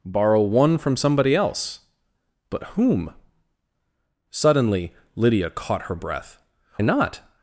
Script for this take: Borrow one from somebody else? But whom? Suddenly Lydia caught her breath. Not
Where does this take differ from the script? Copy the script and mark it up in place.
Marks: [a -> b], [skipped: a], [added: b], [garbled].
Borrow one from somebody else? But whom? Suddenly Lydia caught her breath. Not